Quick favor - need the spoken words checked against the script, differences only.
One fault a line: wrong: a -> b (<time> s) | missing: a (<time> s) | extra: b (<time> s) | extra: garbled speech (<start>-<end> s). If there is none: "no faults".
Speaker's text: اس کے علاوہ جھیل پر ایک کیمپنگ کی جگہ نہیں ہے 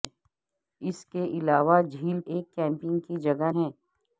missing: پر (2.2 s)
missing: نہیں (3.5 s)